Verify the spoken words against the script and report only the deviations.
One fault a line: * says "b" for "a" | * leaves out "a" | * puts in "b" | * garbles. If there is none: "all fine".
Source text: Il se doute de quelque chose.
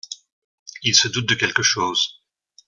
all fine